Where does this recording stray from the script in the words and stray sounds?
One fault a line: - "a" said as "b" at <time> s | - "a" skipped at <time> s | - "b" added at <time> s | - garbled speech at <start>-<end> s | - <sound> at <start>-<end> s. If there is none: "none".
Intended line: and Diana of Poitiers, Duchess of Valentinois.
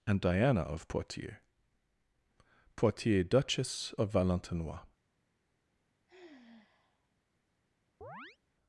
- "Poitiers" added at 2.8 s
- sigh at 6.1-7.1 s
- chirp at 8.0-8.4 s